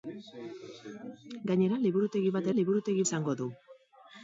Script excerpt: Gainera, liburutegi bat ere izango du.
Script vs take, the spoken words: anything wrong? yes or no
yes